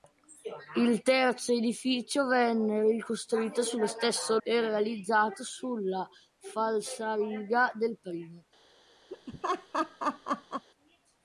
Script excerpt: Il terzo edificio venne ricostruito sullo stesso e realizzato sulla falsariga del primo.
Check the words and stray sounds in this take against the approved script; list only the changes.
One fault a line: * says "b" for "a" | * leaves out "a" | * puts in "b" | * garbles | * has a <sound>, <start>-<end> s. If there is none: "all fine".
* has a laugh, 9.1-10.7 s